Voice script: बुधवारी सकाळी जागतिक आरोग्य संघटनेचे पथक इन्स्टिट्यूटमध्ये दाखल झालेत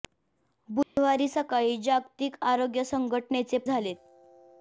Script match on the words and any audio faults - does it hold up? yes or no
no